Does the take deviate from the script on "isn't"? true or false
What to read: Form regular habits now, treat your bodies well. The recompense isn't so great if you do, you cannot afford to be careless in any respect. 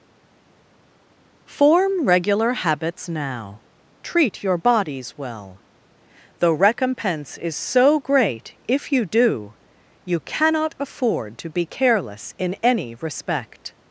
true